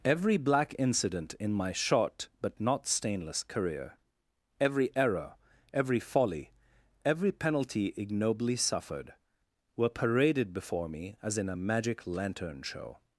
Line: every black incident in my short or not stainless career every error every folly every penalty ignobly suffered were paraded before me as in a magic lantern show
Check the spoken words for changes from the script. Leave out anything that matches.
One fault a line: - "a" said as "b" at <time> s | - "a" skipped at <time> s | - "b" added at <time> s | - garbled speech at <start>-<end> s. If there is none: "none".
- "or" said as "but" at 2.4 s